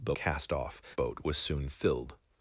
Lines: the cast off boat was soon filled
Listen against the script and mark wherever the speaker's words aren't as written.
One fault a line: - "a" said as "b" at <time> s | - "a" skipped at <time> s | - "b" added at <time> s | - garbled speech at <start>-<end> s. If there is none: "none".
none